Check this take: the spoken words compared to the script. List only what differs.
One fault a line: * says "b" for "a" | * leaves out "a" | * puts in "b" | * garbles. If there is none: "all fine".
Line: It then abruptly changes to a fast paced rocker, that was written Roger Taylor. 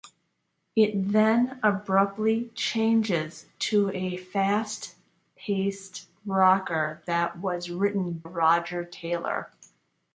all fine